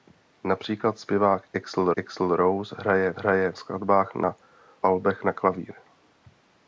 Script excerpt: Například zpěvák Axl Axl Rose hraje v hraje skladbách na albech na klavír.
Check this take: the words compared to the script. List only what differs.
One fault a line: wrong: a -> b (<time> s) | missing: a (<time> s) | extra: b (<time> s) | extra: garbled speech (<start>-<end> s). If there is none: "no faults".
no faults